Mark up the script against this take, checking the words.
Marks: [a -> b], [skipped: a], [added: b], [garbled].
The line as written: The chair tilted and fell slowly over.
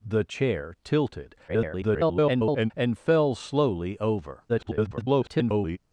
The chair tilted [garbled] and fell slowly over. [garbled]